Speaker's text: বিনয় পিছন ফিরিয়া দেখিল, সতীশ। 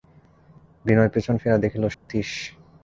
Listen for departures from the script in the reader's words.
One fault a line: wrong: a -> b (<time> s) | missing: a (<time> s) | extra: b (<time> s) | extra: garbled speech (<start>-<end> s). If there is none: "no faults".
no faults